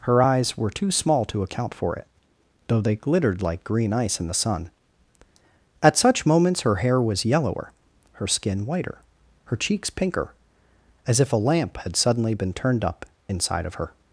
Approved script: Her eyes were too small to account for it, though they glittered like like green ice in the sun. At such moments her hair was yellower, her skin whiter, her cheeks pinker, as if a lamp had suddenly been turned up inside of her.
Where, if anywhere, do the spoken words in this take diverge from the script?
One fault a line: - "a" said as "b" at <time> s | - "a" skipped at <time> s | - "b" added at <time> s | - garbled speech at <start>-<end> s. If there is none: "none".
- "like" skipped at 3.6 s